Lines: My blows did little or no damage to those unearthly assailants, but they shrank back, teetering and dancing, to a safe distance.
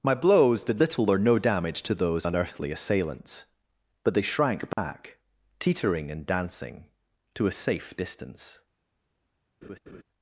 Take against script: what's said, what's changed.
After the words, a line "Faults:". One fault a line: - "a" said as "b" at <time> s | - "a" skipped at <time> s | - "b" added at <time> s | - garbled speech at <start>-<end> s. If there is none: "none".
My blows did little or no damage to those unearthly assailants, but they shrank back, teetering and dancing, to a safe distance.
Faults:
none